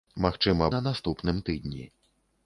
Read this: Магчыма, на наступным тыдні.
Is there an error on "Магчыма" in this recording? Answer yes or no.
no